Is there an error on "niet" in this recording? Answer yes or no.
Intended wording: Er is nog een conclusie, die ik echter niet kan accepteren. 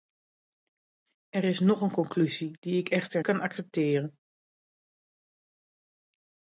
yes